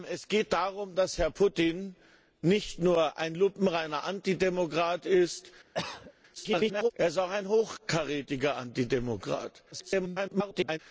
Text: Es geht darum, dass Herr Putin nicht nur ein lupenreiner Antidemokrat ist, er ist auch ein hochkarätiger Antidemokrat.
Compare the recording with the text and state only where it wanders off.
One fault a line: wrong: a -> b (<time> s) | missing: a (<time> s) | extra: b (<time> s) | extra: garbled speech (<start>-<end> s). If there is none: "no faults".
extra: garbled speech (6.3-6.9 s)
extra: garbled speech (9.7-10.8 s)